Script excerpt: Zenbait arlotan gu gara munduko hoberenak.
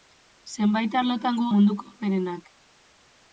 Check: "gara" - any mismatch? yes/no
yes